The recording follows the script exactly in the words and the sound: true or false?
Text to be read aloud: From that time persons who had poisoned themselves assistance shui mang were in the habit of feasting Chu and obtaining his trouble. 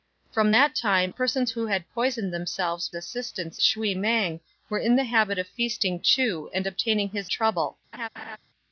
false